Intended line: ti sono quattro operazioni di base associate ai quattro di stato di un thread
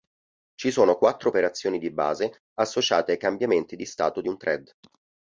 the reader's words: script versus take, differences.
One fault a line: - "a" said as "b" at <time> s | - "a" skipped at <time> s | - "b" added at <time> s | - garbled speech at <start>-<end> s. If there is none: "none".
- "ti" said as "ci" at 0.6 s
- "quattro" said as "cambiamenti" at 3.2 s